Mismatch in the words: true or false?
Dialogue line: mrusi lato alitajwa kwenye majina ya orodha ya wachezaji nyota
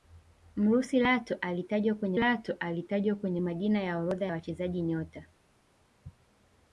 true